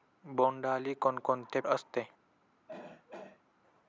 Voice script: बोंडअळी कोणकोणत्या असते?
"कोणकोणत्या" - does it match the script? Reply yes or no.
yes